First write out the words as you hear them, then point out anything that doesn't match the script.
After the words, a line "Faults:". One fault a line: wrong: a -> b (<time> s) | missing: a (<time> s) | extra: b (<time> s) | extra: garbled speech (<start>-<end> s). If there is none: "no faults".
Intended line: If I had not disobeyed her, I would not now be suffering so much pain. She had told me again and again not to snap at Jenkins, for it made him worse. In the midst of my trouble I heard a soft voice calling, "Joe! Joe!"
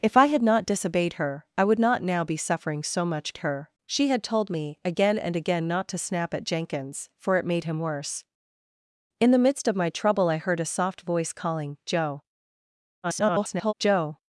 If I had not disobeyed her, I would not now be suffering so much her. She had told me again and again not to snap at Jenkins, for it made him worse. In the midst of my trouble I heard a soft voice calling, "Joe! [garbled] Joe!"
Faults:
wrong: pain -> her (3.4 s)
extra: garbled speech (13.0-13.7 s)